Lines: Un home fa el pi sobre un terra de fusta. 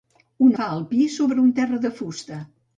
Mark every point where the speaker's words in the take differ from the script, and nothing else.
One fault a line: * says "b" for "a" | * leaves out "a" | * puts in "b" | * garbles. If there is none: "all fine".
* leaves out "home"